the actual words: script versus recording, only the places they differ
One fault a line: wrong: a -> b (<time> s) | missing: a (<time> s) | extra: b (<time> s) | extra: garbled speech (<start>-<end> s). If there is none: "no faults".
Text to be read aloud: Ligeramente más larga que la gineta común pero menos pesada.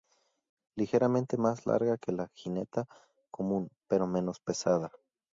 no faults